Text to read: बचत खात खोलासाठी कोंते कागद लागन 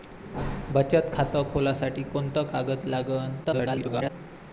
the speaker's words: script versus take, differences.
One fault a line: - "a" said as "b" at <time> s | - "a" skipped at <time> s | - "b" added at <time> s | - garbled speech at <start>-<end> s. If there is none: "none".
- garbled speech at 3.4-4.1 s